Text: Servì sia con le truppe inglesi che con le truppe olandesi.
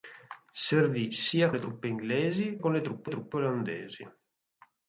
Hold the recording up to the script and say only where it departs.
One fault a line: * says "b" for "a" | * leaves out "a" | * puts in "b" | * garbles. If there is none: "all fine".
* leaves out "con"
* leaves out "che"
* puts in "truppe"